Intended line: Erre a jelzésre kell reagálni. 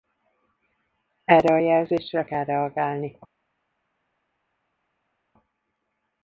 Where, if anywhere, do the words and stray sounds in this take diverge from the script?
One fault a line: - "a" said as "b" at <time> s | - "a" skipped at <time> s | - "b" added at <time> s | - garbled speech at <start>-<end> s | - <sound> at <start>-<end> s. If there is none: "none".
none